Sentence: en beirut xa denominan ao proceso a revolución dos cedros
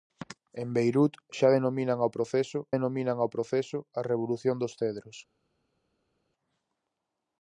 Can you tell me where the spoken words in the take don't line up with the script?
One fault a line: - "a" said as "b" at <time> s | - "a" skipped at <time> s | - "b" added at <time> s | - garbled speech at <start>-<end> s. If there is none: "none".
- "denominan ao proceso" added at 2.7 s